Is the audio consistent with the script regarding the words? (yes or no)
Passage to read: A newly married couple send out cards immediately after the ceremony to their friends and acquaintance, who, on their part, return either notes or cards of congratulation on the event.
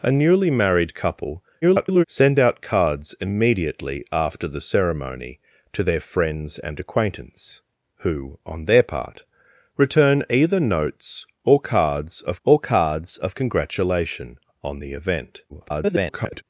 no